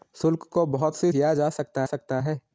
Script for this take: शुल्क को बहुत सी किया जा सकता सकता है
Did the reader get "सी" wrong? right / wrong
right